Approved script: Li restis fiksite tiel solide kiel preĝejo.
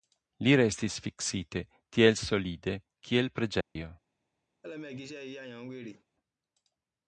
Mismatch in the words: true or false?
false